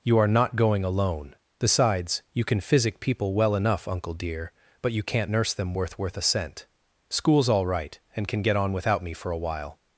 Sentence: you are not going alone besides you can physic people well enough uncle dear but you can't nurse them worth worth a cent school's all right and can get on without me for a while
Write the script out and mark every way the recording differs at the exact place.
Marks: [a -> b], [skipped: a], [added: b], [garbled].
you are not going alone besides you can physic people well enough uncle dear but you can't nurse them worth worth a cent school's all right and can get on without me for a while